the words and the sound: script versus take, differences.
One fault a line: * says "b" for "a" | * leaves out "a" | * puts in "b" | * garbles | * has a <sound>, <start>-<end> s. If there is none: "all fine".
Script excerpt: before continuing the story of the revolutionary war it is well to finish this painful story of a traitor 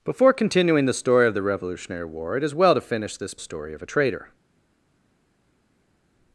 * leaves out "painful"